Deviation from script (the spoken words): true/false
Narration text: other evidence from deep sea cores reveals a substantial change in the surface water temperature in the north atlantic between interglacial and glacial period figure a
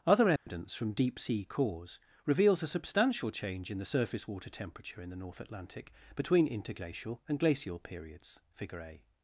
true